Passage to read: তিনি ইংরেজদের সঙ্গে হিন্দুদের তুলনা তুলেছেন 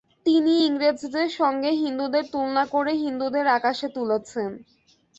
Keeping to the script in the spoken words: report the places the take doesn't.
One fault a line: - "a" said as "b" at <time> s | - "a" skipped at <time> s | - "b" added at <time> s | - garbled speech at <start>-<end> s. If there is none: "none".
- "করে হিন্দুদের আকাশে" added at 2.6 s